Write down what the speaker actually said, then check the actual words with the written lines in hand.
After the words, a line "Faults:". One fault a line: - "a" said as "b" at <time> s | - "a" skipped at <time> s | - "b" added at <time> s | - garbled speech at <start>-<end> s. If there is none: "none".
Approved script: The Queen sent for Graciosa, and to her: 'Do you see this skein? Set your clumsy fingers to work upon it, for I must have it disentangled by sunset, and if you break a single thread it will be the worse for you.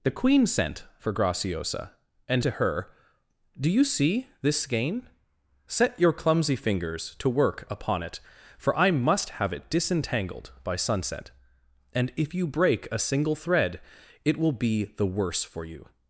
The Queen sent for Graciosa, and to her: 'Do you see this skein? Set your clumsy fingers to work upon it, for I must have it disentangled by sunset, and if you break a single thread it will be the worse for you.
Faults:
none